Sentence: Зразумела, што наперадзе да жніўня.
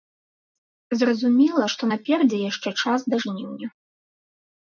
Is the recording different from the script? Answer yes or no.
yes